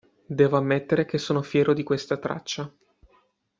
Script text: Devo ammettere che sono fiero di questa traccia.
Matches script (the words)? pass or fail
pass